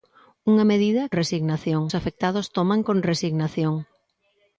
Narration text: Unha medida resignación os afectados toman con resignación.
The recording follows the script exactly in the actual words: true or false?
true